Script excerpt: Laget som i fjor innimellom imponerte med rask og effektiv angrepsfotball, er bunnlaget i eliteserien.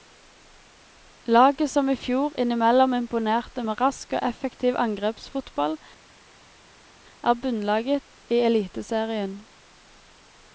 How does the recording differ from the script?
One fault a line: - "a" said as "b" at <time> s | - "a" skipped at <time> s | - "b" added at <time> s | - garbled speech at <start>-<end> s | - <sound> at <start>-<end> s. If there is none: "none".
none